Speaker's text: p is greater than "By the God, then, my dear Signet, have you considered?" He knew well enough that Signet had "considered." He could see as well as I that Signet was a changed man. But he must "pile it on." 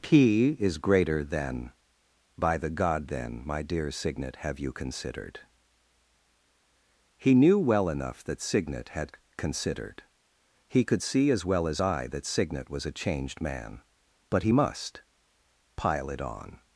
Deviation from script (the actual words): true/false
false